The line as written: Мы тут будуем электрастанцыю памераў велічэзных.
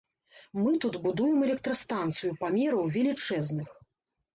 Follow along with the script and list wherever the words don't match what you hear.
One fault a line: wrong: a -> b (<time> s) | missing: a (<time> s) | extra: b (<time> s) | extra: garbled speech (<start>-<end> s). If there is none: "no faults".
no faults